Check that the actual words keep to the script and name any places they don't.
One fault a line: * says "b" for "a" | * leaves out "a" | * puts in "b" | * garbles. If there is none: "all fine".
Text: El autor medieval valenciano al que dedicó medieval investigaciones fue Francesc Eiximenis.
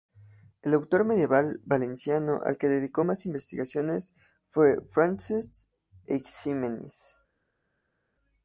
* says "más" for "medieval"